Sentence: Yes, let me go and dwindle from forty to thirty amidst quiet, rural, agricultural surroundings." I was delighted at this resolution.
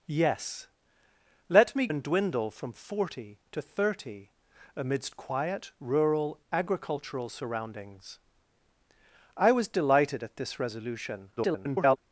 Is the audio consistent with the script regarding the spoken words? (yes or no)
no